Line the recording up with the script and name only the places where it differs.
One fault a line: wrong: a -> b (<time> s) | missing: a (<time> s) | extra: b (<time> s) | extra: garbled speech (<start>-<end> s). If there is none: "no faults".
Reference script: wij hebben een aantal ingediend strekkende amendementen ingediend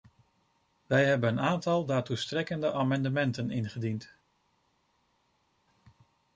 wrong: ingediend -> daartoe (1.9 s)